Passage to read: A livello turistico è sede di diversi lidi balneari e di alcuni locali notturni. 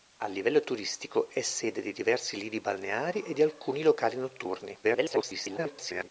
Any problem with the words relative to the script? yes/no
yes